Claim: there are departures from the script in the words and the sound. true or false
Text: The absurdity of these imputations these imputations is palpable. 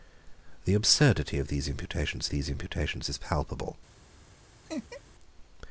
true